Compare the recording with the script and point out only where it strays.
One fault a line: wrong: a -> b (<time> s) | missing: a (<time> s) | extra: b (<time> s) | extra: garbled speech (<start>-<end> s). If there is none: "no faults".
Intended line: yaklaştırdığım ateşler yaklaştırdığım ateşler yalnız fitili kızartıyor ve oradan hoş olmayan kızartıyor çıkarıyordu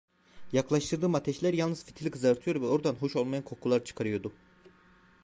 missing: yaklaştırdığım ateşler (1.5 s)
wrong: kızartıyor -> kokular (3.4 s)